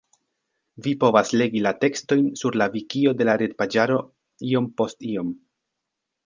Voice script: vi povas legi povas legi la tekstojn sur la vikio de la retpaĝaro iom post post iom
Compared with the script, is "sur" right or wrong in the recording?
right